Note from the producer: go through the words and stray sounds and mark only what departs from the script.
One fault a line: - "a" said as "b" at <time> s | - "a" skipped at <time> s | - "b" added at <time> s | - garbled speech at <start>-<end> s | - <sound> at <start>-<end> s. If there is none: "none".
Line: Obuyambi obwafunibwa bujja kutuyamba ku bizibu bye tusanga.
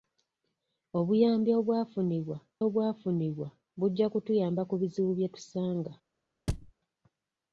- "obwafunibwa" added at 2.7 s
- thud at 6.5-6.7 s